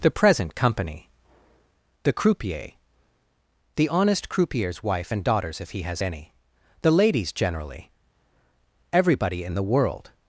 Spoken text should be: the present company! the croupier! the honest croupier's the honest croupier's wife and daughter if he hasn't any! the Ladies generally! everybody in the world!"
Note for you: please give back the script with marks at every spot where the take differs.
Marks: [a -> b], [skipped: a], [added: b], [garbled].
the present company! the croupier! the honest croupier's [skipped: the honest croupier's] wife and [daughter -> daughters] if he [hasn't -> has] any! the Ladies generally! everybody in the world!"